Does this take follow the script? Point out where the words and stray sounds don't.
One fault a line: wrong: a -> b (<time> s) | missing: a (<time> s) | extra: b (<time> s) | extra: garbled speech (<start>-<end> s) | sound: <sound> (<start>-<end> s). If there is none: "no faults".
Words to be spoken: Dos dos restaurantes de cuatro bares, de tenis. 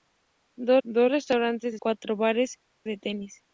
no faults